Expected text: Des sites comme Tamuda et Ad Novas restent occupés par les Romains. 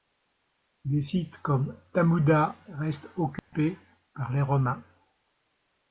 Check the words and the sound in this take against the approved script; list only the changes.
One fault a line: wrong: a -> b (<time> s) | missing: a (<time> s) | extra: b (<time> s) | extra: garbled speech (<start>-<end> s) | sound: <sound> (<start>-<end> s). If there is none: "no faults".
missing: et Ad Novas (2.5 s)
sound: dropout (3.4-3.5 s)